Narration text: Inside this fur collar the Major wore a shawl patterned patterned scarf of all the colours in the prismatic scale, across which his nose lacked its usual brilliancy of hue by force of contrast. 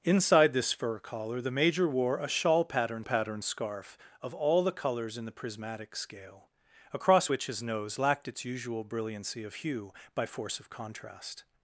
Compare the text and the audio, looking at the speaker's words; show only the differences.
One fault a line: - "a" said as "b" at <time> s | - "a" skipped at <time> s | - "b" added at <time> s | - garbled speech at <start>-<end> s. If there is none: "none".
none